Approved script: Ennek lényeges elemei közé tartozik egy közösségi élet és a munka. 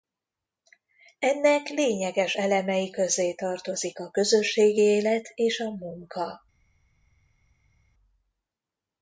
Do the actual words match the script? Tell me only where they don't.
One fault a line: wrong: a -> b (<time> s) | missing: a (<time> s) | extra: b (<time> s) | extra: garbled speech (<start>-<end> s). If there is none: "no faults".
wrong: egy -> a (4.0 s)